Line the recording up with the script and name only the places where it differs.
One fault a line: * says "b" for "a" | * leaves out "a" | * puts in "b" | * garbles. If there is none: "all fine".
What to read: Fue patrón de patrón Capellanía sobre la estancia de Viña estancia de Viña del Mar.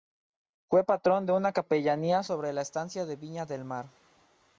* says "una" for "patrón"
* leaves out "estancia de Viña"